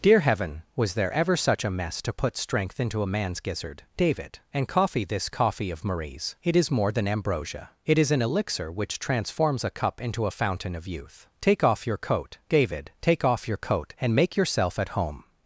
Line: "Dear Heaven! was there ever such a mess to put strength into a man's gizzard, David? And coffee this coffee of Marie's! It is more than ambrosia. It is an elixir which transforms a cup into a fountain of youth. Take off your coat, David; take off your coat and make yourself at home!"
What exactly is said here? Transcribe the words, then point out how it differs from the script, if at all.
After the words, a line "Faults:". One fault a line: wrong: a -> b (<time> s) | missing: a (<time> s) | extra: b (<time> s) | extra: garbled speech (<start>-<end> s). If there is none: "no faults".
"Dear Heaven! was there ever such a mess to put strength into a man's gizzard, David? And coffee this coffee of Marie's! It is more than ambrosia. It is an elixir which transforms a cup into a fountain of youth. Take off your coat, David; take off your coat and make yourself at home!"
Faults:
no faults